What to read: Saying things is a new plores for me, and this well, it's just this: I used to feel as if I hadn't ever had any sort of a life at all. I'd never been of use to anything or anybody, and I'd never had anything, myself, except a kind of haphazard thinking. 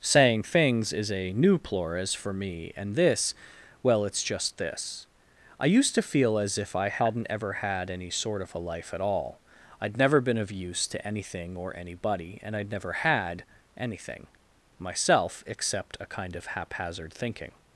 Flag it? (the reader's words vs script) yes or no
no